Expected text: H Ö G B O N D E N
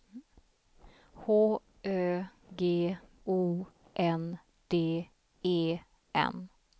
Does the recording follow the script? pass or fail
fail